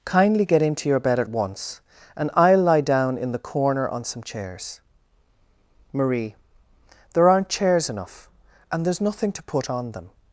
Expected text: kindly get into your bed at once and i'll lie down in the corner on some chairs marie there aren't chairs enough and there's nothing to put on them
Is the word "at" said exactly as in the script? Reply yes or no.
yes